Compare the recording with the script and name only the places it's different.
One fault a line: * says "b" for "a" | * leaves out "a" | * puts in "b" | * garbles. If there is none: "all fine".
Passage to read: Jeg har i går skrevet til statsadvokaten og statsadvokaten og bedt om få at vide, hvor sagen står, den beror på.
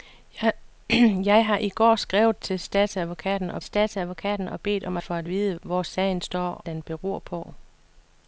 all fine